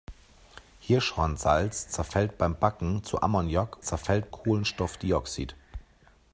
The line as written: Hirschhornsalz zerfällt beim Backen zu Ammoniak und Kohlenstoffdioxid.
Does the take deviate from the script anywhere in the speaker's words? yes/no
yes